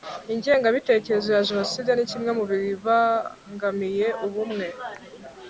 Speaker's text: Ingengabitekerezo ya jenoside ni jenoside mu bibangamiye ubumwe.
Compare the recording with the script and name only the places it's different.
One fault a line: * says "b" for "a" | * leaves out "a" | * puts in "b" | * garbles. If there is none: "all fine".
* says "kimwe" for "jenoside"